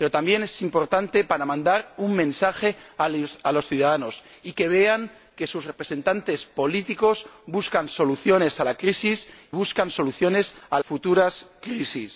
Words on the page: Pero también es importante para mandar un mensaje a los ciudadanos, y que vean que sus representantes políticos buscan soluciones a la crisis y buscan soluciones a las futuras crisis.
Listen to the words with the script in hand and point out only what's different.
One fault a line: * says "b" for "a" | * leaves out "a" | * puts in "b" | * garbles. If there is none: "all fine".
* leaves out "y"
* leaves out "las"